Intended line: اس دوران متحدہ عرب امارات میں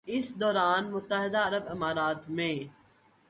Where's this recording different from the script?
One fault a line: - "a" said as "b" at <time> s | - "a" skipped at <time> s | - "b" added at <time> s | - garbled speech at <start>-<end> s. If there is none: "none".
none